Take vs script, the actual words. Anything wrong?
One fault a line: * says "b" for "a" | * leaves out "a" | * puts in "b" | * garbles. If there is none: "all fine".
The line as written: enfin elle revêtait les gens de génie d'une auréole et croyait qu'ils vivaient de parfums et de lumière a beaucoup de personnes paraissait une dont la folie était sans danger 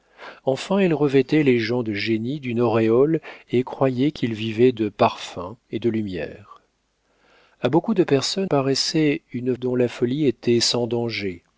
all fine